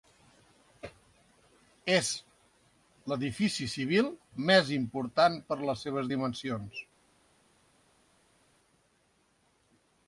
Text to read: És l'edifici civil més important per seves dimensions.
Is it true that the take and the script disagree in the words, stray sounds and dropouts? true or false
true